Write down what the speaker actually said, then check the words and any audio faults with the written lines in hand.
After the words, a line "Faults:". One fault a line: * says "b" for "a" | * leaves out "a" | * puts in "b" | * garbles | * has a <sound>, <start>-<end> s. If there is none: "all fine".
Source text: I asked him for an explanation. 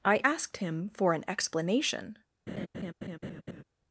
I asked him for an explanation.
Faults:
* has a laugh, 2.5-3.6 s